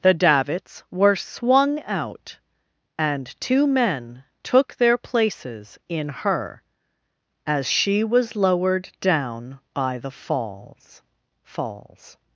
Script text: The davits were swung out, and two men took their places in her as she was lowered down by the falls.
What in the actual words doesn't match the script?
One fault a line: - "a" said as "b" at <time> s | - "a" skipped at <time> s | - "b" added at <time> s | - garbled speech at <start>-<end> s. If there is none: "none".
- "falls" added at 11.4 s